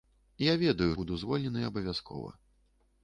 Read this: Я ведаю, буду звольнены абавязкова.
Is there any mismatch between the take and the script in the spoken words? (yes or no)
no